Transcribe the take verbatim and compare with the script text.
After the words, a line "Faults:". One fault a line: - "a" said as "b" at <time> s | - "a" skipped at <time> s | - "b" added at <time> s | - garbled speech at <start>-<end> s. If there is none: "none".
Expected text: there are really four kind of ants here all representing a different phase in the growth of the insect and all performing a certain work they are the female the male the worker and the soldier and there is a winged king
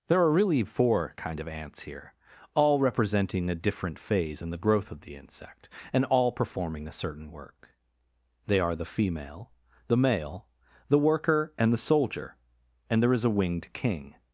there are really four kind of ants here all representing a different phase in the growth of the insect and all performing a certain work they are the female the male the worker and the soldier and there is a winged king
Faults:
none